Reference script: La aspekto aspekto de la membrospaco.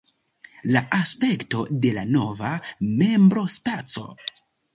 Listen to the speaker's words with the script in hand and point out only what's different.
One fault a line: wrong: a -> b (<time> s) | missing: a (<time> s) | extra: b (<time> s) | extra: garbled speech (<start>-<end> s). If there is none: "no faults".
missing: aspekto (1.6 s)
extra: nova (2.1 s)